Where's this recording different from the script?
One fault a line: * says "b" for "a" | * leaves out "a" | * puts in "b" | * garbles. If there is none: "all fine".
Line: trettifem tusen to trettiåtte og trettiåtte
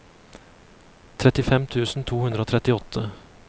* says "hundre" for "trettiåtte"